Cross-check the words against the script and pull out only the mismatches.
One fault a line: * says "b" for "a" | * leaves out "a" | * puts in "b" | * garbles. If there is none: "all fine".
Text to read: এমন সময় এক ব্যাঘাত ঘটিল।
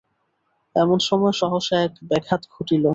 * puts in "সহসা"